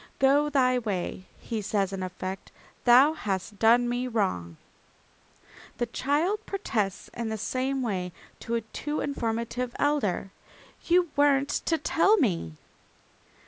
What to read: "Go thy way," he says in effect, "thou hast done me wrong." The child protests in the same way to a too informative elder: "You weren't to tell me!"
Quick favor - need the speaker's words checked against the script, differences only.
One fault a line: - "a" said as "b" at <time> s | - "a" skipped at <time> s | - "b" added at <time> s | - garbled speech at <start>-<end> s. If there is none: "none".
none